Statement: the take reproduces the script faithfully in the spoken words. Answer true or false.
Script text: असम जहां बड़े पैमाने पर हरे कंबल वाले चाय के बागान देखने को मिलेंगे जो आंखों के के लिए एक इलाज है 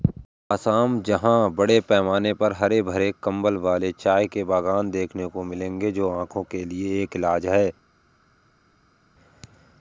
false